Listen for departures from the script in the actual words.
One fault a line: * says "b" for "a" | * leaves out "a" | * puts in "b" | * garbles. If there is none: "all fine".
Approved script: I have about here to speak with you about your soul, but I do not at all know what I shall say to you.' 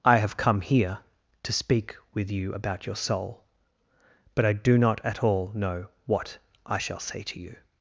* says "come" for "about"